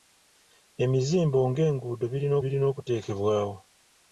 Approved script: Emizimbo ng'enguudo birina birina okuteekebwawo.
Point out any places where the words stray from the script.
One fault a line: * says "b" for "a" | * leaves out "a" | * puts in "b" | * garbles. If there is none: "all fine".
all fine